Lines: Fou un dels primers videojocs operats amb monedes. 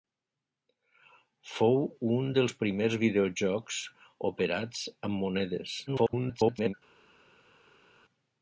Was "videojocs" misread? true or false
false